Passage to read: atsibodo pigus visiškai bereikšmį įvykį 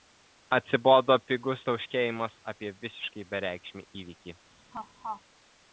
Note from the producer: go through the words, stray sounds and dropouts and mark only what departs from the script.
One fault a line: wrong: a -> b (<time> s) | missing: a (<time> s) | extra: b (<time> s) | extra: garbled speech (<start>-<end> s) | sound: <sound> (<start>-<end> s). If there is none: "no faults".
extra: tauškėjimas apie (1.7 s)
sound: laugh (4.7-5.2 s)